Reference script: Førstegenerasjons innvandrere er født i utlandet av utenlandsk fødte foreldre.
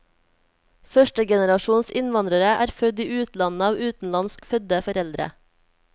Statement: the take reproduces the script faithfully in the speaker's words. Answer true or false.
true